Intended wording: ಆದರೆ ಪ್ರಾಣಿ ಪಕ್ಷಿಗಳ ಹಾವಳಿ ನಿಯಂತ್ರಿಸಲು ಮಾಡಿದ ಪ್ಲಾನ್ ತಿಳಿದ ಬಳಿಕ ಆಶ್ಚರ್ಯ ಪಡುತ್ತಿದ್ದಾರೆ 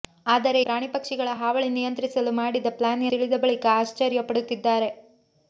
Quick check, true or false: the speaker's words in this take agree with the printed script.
true